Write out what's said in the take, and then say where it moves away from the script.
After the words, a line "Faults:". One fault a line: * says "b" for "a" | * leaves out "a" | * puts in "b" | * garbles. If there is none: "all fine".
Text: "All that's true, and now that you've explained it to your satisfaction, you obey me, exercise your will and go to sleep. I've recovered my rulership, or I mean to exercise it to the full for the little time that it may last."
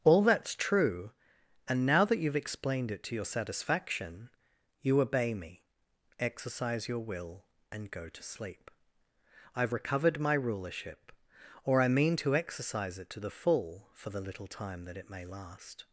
"All that's true, and now that you've explained it to your satisfaction, you obey me, exercise your will and go to sleep. I've recovered my rulership, or I mean to exercise it to the full for the little time that it may last."
Faults:
all fine